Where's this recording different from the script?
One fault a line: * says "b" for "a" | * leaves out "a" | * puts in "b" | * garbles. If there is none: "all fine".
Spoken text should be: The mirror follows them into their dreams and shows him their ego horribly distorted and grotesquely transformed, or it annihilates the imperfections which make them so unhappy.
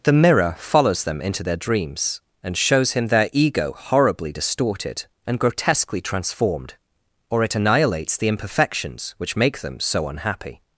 all fine